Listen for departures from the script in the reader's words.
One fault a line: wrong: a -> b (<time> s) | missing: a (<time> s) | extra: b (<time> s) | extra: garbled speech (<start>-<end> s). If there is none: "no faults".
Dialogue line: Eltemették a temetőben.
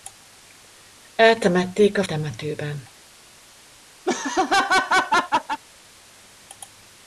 no faults